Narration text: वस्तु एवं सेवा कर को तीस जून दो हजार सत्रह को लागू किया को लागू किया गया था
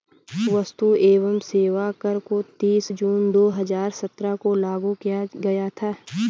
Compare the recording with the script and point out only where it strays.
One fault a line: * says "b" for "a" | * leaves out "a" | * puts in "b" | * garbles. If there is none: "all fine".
* leaves out "को लागू किया"